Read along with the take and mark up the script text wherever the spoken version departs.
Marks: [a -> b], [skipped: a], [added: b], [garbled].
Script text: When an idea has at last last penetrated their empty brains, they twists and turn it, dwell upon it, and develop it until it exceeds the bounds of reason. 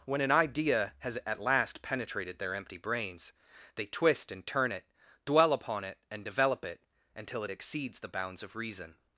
When an idea has at last [skipped: last] penetrated their empty brains, they [twists -> twist] and turn it, dwell upon it, and develop it until it exceeds the bounds of reason.